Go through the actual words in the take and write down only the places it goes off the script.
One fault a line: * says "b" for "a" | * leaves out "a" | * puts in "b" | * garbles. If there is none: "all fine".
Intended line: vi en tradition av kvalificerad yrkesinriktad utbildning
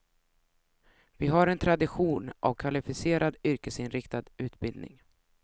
* puts in "har"